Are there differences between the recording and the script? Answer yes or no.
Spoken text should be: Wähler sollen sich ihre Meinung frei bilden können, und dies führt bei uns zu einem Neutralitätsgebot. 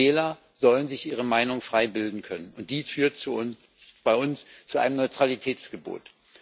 no